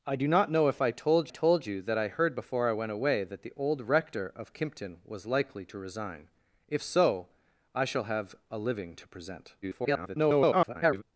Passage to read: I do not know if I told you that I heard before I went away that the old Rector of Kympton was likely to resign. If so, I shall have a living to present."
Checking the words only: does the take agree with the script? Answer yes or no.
no